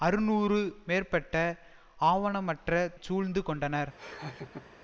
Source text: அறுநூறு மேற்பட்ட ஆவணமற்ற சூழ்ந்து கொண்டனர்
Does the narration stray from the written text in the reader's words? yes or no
no